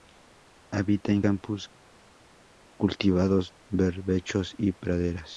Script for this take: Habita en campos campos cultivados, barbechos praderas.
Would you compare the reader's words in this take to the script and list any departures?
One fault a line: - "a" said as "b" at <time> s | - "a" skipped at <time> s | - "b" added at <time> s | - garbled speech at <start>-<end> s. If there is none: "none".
- "campos" skipped at 1.7 s
- "y" added at 4.6 s